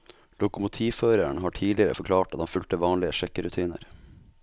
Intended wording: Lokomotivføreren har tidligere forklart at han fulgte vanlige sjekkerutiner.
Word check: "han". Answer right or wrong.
right